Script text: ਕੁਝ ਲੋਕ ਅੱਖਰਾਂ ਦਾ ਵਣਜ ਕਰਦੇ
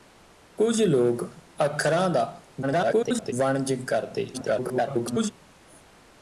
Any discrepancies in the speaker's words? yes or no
yes